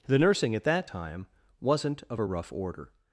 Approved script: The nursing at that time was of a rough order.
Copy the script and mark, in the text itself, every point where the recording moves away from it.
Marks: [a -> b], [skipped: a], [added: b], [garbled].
The nursing at that time [was -> wasn't] of a rough order.